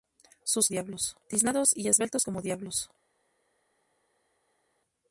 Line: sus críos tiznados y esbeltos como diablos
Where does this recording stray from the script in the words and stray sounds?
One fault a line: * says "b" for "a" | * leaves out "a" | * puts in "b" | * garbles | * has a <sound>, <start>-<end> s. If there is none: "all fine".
* says "diablos" for "críos"